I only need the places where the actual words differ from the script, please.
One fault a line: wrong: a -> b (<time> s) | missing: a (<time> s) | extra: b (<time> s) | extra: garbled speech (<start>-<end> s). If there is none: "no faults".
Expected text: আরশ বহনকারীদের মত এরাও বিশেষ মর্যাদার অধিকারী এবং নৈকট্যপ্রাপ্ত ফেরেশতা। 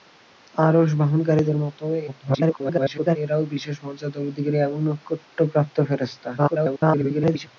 extra: garbled speech (2.1-3.2 s)
extra: garbled speech (6.4-7.5 s)